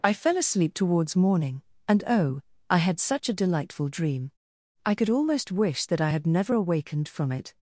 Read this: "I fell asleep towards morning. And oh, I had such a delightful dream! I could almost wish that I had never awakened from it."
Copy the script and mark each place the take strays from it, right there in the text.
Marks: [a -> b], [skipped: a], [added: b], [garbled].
"I fell asleep towards morning. And oh, I had such a delightful dream! I could almost wish that I had never awakened from it."